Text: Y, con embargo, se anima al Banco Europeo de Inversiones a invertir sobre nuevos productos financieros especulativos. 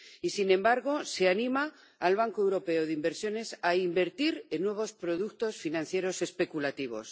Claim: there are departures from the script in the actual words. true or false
true